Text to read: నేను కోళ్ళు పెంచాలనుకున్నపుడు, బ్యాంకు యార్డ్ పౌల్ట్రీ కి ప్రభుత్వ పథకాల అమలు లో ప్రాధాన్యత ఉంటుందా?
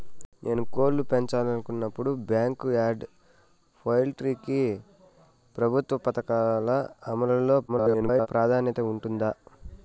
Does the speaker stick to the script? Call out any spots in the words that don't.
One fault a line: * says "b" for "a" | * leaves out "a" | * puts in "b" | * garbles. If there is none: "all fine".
* garbles